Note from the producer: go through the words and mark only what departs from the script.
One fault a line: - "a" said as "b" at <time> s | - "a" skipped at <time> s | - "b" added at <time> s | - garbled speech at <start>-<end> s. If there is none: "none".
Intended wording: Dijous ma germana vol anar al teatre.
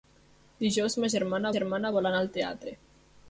- "germana" added at 1.6 s